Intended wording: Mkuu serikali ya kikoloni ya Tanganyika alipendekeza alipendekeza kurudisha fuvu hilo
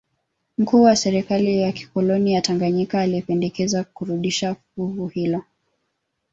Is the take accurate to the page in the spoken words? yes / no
no